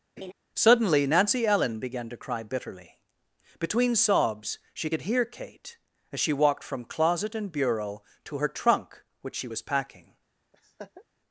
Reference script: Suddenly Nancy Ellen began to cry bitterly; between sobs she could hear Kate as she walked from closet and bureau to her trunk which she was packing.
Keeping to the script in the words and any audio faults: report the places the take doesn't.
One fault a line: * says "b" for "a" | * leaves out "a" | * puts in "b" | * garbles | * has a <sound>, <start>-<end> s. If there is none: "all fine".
* has a laugh, 0.2-0.3 s
* has a laugh, 10.5-11.0 s